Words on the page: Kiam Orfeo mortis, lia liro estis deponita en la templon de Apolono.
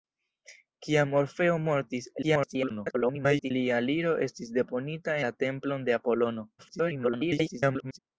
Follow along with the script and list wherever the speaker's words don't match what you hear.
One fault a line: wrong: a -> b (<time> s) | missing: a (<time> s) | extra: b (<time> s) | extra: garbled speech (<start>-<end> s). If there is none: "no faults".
extra: garbled speech (2.2-3.5 s)
missing: en (5.2 s)
extra: garbled speech (6.6-8.0 s)